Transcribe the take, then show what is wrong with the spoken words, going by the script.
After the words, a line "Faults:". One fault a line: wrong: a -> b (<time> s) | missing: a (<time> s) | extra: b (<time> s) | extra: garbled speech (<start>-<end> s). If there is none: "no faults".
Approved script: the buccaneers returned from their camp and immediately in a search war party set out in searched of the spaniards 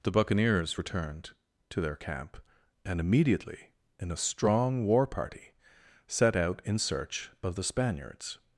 the buccaneers returned to their camp and immediately in a strong war party set out in search of the spaniards
Faults:
wrong: from -> to (1.7 s)
wrong: search -> strong (4.2 s)
wrong: searched -> search (6.8 s)